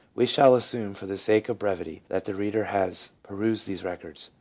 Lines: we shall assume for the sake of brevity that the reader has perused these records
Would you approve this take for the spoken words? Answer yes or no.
yes